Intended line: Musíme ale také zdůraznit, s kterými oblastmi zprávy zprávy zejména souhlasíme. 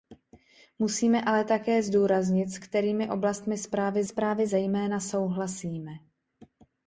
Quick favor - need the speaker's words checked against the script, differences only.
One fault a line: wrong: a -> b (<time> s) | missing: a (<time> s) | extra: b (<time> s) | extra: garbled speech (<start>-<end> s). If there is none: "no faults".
no faults